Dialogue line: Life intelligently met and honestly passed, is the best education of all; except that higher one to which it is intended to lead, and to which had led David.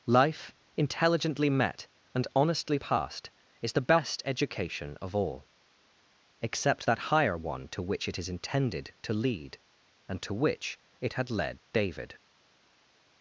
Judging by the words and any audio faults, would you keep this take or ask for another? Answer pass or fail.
fail